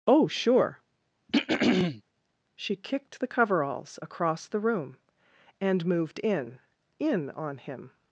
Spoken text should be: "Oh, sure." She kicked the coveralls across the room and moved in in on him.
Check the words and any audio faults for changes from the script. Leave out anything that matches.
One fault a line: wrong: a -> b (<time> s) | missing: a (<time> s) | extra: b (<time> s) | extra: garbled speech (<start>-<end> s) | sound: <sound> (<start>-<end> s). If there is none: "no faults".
sound: throat clearing (1.3-2.0 s)